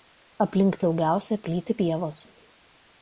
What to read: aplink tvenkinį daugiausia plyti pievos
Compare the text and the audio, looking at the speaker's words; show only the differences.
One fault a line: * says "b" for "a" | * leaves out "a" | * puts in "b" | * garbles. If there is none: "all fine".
* leaves out "tvenkinį"